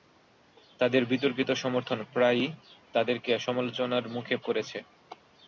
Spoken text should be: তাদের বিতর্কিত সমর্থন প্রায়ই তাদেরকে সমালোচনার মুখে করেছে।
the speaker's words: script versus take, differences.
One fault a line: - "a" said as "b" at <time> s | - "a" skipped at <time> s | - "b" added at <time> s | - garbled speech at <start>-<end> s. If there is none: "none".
none